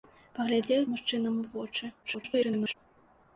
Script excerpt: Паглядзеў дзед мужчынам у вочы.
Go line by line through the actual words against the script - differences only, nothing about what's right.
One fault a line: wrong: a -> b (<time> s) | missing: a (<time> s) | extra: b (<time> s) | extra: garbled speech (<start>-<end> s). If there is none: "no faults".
missing: дзед (0.8 s)
extra: garbled speech (2.0-2.7 s)